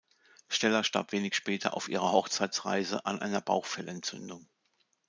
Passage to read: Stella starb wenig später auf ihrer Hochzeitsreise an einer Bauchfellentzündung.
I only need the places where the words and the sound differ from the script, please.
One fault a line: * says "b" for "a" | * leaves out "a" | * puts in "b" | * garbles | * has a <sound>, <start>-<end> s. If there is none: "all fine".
all fine